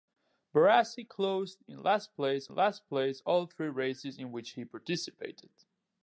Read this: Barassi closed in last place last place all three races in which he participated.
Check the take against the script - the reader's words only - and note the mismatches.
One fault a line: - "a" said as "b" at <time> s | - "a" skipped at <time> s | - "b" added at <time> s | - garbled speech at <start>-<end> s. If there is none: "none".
none